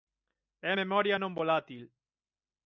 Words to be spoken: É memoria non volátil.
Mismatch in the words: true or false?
false